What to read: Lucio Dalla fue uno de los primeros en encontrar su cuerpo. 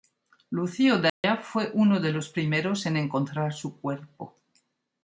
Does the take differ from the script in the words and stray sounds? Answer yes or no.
yes